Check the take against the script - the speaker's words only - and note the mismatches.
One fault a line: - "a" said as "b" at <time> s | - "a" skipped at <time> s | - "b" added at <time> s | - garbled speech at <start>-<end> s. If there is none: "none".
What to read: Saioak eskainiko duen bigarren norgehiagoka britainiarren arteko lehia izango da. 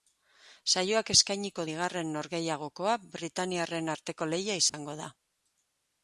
- "duen" skipped at 1.6 s